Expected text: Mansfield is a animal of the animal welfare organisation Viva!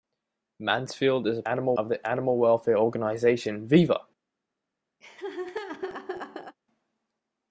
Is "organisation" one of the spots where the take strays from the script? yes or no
no